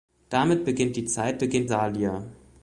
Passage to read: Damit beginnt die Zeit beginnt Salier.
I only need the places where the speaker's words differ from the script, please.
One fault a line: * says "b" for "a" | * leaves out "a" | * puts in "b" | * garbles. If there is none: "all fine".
all fine